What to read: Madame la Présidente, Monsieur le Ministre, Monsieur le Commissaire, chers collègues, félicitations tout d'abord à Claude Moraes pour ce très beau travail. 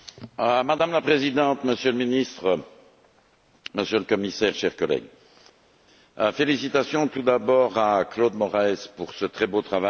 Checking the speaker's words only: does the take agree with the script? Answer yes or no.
yes